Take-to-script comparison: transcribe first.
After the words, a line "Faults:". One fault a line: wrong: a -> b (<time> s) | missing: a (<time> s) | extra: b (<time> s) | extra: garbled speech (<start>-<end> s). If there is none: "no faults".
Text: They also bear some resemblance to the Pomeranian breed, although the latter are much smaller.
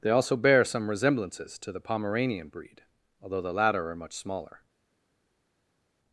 They also bear some resemblances to the Pomeranian breed, although the latter are much smaller.
Faults:
wrong: resemblance -> resemblances (0.9 s)